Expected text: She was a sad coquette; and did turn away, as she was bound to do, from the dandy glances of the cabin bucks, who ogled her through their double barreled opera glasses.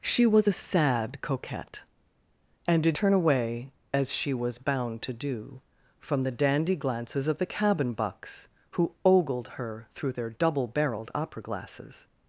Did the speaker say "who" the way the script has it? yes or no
yes